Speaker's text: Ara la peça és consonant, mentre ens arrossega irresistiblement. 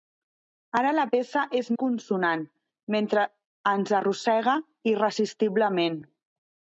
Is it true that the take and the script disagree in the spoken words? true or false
false